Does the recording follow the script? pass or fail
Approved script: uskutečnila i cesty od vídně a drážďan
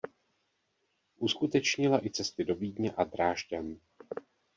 fail